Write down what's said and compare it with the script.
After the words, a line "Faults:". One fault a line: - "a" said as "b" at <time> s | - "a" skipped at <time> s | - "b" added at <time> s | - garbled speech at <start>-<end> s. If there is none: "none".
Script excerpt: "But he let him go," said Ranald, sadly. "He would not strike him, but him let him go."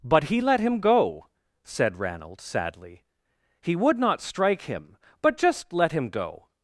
"But he let him go," said Ranald, sadly. "He would not strike him, but just let him go."
Faults:
- "him" said as "just" at 5.4 s